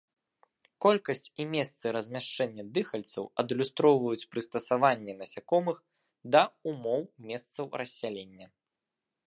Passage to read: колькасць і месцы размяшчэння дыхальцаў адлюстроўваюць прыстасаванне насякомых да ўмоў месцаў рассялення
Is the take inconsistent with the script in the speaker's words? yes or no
no